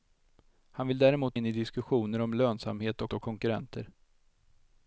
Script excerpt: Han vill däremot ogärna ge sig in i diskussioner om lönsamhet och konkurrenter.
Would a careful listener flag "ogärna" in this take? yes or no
yes